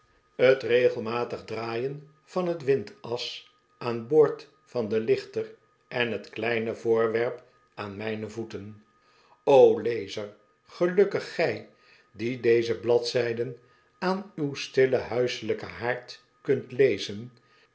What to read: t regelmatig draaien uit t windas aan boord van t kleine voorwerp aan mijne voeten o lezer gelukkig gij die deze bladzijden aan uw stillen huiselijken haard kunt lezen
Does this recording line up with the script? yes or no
no